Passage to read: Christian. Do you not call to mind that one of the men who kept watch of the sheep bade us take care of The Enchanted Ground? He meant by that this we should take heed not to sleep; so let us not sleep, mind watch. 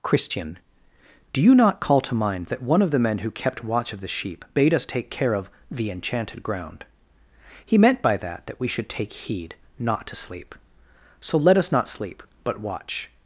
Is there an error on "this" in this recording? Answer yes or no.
yes